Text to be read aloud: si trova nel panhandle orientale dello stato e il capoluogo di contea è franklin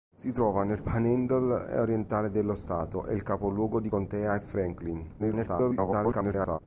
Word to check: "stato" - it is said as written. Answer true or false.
true